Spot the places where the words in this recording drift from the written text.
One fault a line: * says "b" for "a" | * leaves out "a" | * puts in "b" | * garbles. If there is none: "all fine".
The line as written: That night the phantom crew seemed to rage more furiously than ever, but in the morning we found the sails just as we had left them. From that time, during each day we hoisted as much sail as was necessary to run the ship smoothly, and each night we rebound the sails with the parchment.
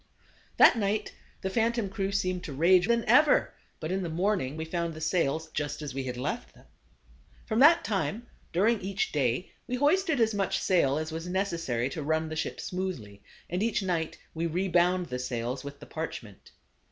* leaves out "more furiously"